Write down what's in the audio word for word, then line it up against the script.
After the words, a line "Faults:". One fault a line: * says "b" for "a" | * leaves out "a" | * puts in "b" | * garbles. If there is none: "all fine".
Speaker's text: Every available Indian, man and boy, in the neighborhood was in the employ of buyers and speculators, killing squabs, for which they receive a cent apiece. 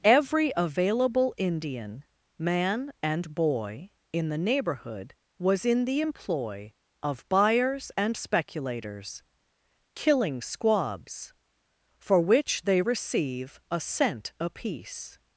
Every available Indian, man and boy, in the neighborhood was in the employ of buyers and speculators, killing squabs, for which they receive a cent apiece.
Faults:
all fine